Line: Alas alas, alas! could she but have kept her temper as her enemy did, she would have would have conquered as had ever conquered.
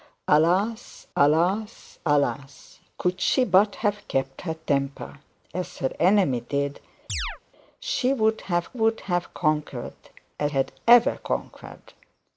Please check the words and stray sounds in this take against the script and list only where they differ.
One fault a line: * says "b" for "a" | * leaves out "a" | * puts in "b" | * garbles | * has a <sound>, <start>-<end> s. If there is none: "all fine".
* has a chirp, 7.1-7.4 s